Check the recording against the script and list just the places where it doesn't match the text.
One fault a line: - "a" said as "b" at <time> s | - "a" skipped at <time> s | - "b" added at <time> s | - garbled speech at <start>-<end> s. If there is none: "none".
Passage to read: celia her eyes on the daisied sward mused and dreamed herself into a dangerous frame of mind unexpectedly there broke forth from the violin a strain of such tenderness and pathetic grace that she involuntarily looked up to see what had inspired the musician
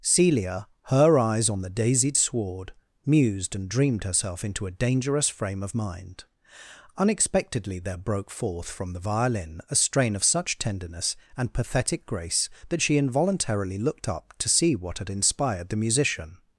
none